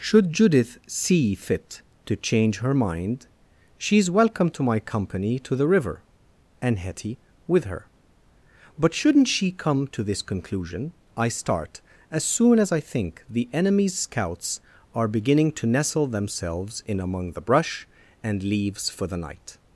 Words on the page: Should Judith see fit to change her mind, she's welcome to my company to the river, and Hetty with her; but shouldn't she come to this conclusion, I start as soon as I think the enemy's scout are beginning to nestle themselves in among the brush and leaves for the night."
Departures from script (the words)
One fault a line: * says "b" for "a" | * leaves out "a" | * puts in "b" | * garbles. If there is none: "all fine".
* says "scouts" for "scout"